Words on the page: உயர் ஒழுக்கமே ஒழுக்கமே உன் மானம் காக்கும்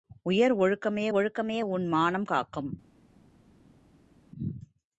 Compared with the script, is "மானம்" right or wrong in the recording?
right